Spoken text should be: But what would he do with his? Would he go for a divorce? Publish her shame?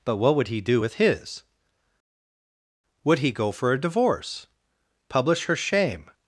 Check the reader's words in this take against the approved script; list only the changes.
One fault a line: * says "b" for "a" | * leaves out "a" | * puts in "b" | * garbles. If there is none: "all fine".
all fine